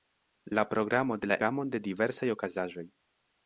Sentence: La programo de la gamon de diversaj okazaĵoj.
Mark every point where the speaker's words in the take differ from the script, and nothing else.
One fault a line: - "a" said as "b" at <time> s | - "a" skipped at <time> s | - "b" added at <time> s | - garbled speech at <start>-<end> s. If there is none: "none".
none